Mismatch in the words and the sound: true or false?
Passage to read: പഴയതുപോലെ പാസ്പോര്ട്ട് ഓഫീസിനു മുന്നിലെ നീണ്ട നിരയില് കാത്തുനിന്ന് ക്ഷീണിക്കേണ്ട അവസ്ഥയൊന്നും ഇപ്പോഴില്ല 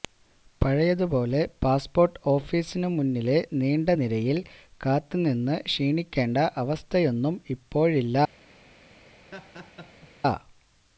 true